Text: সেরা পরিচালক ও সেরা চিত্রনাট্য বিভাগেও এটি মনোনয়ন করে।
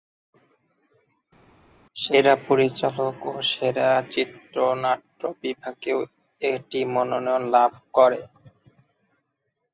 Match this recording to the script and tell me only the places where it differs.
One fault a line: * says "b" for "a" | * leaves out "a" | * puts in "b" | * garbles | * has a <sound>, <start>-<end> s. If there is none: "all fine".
* puts in "লাভ"